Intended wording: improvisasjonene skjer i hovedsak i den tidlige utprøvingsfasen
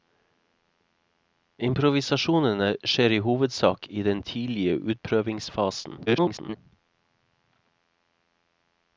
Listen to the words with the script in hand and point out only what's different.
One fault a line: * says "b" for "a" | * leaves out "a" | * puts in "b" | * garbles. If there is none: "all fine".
* garbles